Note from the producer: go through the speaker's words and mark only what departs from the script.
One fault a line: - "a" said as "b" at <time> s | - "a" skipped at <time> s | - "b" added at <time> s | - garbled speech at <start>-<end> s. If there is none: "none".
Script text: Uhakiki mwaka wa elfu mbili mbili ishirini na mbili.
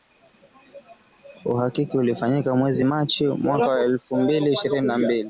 - "ulifanyika mwezi Machi" added at 2.0 s
- "mbili" skipped at 4.5 s